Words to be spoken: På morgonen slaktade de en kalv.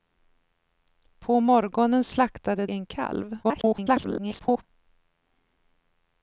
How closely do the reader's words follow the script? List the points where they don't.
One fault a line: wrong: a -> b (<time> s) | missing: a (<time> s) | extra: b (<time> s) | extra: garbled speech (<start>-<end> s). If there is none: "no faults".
missing: de (2.7 s)
extra: garbled speech (3.4-4.6 s)